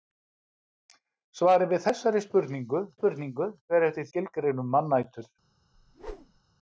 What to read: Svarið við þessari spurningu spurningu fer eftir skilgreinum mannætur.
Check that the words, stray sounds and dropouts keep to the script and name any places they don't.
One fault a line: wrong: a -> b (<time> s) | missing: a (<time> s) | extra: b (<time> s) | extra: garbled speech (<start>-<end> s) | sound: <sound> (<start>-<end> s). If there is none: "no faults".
sound: whoosh (5.7-6.4 s)